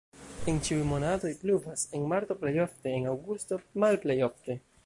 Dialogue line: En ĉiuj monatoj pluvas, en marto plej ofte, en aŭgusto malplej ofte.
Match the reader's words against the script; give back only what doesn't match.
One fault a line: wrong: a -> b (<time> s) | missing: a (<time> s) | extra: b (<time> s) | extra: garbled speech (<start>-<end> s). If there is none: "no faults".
no faults